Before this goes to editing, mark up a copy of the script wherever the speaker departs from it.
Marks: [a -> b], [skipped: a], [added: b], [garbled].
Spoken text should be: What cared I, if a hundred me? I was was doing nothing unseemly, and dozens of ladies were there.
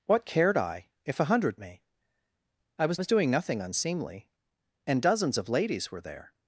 What cared I, if a hundred me? I was was doing nothing unseemly, and dozens of ladies were there.